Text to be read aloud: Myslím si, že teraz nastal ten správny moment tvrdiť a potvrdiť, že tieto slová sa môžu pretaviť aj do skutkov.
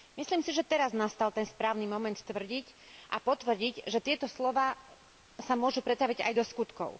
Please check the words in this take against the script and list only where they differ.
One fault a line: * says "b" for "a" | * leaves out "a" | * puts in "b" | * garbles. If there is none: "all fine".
all fine